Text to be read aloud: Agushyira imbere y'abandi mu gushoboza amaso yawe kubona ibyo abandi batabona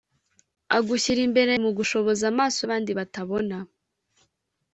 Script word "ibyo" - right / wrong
wrong